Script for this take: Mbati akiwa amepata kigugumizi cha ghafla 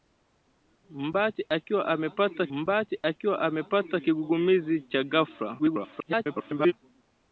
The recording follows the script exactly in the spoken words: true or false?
false